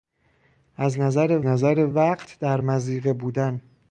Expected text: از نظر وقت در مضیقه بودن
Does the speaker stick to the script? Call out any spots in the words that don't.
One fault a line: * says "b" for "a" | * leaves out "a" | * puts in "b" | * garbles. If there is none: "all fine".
* puts in "نظر"